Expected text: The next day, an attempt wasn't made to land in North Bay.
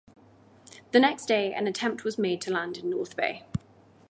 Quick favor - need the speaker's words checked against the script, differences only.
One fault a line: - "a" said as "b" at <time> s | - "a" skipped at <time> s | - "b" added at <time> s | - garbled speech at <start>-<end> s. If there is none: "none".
- "wasn't" said as "was" at 2.0 s